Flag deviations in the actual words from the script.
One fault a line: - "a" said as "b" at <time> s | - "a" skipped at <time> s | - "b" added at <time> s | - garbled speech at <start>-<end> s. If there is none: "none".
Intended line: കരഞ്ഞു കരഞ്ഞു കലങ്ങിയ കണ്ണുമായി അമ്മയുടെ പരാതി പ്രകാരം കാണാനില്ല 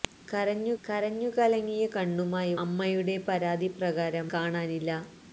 none